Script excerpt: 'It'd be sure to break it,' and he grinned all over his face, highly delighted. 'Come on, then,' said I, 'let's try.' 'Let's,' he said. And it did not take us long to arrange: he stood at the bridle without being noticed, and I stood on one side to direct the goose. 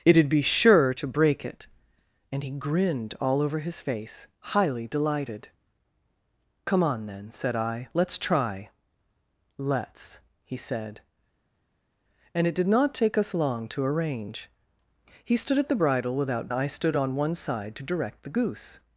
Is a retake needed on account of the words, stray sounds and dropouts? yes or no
yes